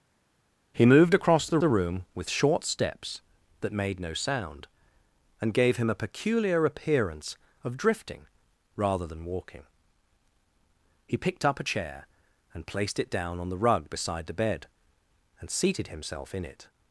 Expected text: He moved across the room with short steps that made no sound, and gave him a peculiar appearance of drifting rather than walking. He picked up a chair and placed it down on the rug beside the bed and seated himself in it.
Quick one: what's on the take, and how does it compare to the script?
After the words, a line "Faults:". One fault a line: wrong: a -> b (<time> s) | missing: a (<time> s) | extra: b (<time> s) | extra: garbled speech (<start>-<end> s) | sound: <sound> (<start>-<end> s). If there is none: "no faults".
He moved across the the room with short steps that made no sound, and gave him a peculiar appearance of drifting rather than walking. He picked up a chair and placed it down on the rug beside the bed and seated himself in it.
Faults:
extra: the (1.6 s)